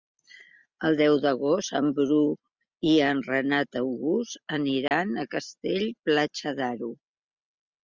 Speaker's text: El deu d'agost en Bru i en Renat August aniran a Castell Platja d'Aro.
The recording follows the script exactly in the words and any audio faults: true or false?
false